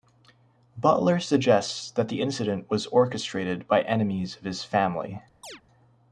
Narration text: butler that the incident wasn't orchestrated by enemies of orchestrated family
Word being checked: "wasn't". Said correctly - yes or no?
no